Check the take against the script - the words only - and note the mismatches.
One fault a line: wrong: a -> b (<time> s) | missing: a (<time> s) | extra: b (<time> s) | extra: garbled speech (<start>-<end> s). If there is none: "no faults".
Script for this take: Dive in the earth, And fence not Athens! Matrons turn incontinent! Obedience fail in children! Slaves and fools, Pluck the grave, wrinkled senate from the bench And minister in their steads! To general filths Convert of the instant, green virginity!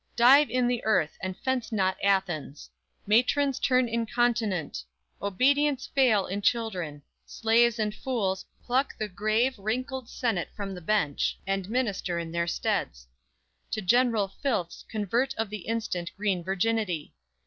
no faults